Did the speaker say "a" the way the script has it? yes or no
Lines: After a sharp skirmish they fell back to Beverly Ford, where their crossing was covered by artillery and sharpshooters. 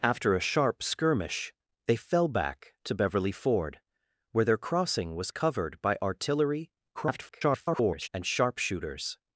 yes